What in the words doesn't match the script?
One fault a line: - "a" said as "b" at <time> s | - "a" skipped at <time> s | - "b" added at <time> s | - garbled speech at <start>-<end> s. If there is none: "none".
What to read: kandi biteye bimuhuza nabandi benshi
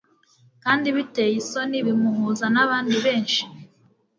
- "isoni" added at 1.4 s